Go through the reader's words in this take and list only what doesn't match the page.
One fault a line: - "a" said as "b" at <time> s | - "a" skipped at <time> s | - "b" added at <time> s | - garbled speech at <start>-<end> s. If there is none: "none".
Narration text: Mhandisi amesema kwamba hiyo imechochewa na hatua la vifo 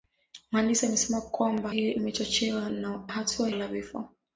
none